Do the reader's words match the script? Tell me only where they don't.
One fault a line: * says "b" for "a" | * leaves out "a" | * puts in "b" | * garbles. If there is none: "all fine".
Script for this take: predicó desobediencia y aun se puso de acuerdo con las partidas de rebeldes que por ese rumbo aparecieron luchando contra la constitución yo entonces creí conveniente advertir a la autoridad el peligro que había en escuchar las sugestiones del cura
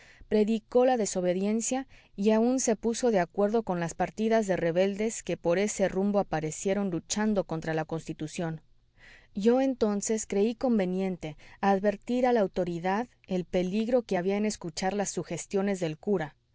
* puts in "la"